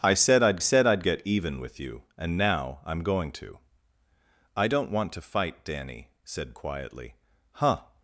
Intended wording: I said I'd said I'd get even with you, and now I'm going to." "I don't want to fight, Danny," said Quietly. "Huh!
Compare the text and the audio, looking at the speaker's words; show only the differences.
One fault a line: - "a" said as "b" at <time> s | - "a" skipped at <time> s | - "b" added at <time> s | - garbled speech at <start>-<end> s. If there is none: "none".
none